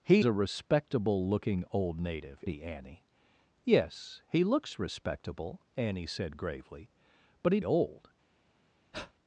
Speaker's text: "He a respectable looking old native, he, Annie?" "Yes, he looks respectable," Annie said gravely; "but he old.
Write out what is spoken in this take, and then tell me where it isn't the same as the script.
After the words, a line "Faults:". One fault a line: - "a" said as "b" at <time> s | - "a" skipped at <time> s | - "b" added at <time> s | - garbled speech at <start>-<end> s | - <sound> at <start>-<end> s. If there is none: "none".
"He a respectable looking old native, he, Annie?" "Yes, he looks respectable," Annie said gravely; "but he old.
Faults:
- breath at 8.9-9.1 s